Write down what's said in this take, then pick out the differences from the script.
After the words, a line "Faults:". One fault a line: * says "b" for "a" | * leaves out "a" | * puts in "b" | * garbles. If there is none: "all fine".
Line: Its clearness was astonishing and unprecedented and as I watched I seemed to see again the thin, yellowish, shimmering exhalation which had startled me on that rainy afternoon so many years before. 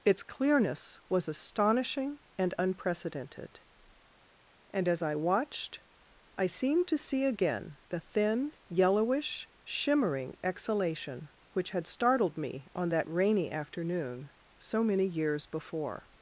Its clearness was astonishing and unprecedented and as I watched I seemed to see again the thin, yellowish, shimmering exhalation which had startled me on that rainy afternoon so many years before.
Faults:
all fine